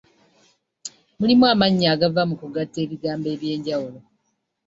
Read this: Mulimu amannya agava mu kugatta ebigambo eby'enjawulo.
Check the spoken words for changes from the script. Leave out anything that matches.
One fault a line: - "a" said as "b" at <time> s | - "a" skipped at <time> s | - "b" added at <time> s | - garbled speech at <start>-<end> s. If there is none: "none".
none